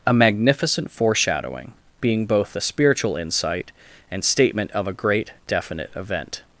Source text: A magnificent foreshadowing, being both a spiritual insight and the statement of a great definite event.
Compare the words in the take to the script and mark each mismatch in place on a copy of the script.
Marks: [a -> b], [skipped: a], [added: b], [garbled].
A magnificent foreshadowing, being both a spiritual insight and [skipped: the] statement of a great definite event.